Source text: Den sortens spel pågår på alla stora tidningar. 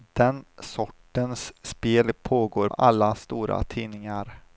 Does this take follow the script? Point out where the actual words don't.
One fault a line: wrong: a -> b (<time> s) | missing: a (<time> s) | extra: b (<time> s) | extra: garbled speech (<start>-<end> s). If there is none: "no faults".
missing: på (2.7 s)